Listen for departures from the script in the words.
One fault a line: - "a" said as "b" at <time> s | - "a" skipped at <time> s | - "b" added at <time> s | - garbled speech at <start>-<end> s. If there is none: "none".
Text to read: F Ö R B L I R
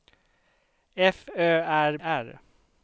- "B L I" skipped at 2.0 s